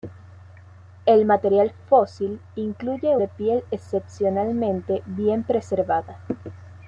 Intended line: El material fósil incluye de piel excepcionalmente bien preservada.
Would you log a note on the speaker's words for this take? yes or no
no